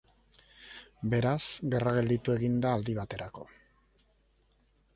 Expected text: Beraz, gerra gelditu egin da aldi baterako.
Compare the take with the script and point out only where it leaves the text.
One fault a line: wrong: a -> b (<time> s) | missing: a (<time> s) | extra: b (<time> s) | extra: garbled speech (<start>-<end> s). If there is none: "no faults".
no faults